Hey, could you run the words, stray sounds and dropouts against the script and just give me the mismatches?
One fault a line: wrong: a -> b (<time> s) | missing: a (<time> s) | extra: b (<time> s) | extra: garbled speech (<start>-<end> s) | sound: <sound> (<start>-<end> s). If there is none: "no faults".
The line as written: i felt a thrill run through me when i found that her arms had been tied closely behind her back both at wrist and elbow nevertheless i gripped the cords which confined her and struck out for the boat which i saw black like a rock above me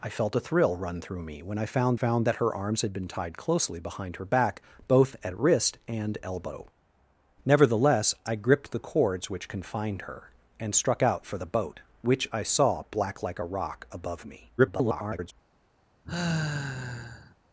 extra: found (1.9 s)
extra: garbled speech (14.6-15.3 s)
sound: sigh (16.0-17.4 s)